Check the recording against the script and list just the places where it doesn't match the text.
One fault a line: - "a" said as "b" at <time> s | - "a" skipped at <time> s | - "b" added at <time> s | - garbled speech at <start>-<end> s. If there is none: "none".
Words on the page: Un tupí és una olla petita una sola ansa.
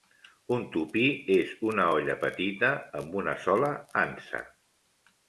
- "amb" added at 3.0 s